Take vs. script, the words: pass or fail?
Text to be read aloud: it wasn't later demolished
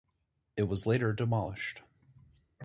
fail